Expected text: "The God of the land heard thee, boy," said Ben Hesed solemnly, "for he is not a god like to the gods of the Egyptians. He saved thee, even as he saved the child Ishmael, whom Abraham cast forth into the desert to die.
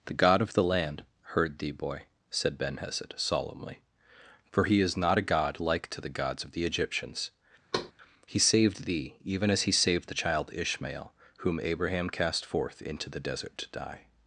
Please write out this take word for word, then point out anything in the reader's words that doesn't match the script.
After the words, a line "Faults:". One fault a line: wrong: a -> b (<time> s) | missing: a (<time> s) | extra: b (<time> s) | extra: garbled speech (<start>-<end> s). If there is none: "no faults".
"The God of the land heard thee, boy," said Ben Hesed solemnly, "for he is not a god like to the gods of the Egyptians. He saved thee, even as he saved the child Ishmael, whom Abraham cast forth into the desert to die.
Faults:
no faults